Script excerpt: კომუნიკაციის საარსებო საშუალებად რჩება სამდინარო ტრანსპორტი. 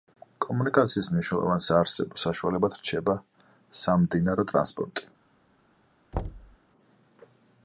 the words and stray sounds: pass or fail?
fail